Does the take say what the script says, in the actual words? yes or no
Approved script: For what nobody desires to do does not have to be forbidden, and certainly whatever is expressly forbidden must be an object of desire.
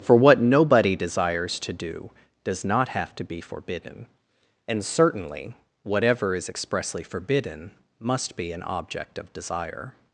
yes